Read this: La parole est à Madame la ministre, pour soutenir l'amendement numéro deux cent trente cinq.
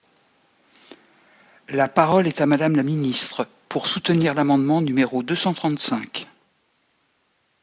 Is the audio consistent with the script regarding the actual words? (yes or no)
yes